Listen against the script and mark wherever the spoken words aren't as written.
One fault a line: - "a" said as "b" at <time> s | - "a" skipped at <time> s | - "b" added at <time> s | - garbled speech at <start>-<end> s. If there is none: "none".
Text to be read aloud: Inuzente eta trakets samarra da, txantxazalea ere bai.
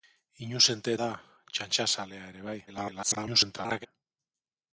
- "eta trakets samarra" skipped at 0.9 s
- garbled speech at 2.7-3.9 s